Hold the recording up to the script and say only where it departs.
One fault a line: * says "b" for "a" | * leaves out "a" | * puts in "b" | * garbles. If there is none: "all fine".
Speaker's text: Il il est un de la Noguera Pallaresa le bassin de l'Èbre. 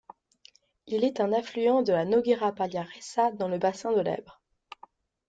* leaves out "il"
* puts in "affluent"
* puts in "dans"